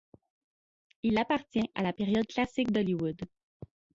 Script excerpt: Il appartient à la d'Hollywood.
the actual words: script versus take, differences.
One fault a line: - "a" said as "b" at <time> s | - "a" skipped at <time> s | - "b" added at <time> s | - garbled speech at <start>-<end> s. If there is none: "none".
- "période classique" added at 1.9 s